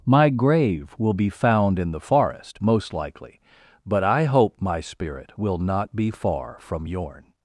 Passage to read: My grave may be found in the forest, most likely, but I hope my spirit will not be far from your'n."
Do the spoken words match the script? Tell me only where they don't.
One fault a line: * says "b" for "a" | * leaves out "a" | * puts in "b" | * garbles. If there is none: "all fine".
* says "will" for "may"